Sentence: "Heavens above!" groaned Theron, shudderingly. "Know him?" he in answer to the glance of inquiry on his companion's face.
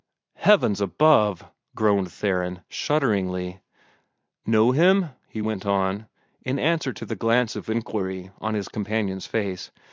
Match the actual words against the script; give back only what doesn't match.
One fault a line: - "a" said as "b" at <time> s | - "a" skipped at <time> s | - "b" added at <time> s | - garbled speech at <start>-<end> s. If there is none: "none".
- "went on" added at 5.4 s